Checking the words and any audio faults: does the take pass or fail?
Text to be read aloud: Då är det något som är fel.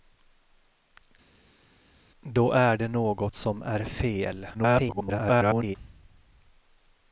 fail